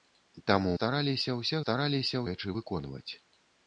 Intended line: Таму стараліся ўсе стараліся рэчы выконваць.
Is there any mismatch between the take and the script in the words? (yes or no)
no